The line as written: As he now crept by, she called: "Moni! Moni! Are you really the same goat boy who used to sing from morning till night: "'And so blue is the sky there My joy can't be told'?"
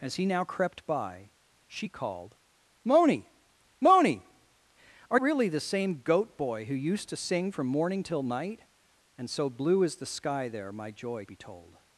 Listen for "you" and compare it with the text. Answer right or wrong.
wrong